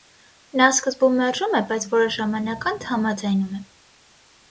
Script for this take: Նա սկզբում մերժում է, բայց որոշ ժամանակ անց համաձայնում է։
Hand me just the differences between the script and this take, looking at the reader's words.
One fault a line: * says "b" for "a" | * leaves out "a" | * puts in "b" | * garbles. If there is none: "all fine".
all fine